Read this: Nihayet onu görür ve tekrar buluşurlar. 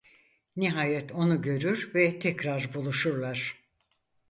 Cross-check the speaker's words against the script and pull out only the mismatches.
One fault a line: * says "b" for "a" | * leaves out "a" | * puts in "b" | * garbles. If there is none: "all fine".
all fine